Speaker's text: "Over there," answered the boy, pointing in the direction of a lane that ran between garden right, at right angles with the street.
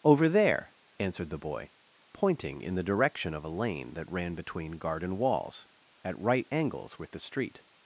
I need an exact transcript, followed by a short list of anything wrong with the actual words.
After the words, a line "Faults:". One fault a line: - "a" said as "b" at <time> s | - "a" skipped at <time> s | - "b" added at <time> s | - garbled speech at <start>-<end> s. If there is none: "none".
"Over there," answered the boy, pointing in the direction of a lane that ran between garden walls, at right angles with the street.
Faults:
- "right" said as "walls" at 5.2 s